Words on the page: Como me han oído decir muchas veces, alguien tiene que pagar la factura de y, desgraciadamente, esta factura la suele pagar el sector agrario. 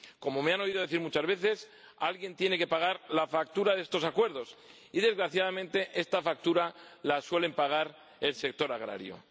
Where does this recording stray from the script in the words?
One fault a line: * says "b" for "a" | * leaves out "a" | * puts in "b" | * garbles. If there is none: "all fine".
* puts in "estos acuerdos"